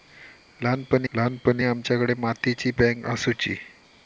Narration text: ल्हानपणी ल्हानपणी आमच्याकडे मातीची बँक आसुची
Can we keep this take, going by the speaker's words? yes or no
yes